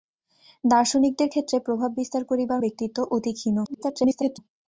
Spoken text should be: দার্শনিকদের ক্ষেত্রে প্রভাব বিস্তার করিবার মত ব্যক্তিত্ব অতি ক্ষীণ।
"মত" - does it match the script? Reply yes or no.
no